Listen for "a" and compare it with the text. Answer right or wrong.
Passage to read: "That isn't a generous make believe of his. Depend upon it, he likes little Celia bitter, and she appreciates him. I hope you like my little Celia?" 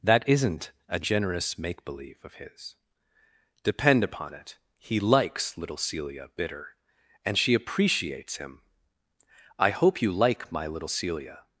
right